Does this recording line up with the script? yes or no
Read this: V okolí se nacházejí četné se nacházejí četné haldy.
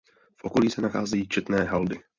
no